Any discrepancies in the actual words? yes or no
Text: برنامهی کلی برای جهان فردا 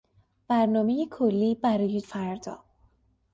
yes